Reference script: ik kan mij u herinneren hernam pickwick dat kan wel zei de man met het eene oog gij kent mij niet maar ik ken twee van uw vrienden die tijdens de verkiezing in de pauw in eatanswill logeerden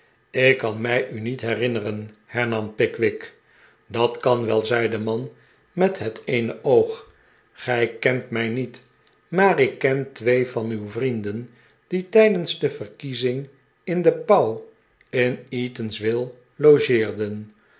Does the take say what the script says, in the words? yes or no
no